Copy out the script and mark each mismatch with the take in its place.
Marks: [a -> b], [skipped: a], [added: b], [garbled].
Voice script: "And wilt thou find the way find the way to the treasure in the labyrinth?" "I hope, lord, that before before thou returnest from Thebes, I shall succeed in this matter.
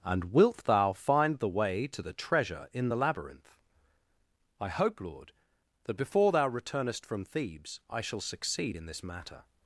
"And wilt thou find the way [skipped: find the way] to the treasure in the labyrinth?" "I hope, lord, that before [skipped: before] thou returnest from Thebes, I shall succeed in this matter.